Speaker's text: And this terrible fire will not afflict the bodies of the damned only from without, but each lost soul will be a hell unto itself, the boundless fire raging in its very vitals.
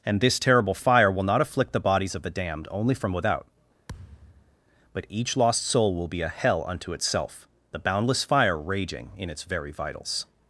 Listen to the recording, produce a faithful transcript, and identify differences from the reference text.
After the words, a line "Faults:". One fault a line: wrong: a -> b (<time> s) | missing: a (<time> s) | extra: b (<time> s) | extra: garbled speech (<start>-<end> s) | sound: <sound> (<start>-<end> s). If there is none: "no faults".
And this terrible fire will not afflict the bodies of the damned only from without, but each lost soul will be a hell unto itself, the boundless fire raging in its very vitals.
Faults:
sound: thud (3.9-4.6 s)